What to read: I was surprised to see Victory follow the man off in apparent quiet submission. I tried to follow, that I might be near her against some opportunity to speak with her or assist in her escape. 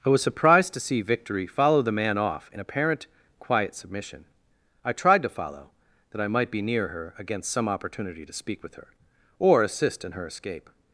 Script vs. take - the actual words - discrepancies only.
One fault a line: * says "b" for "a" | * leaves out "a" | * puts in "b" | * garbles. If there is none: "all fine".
all fine